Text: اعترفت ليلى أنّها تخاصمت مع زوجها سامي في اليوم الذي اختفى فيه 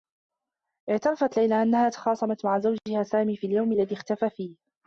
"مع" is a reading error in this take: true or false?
false